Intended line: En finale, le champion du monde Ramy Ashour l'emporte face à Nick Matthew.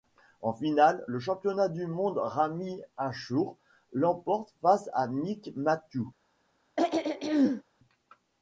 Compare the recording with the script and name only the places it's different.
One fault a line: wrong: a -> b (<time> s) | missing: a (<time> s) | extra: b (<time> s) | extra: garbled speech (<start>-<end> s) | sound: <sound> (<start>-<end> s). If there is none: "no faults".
sound: throat clearing (6.8-7.6 s)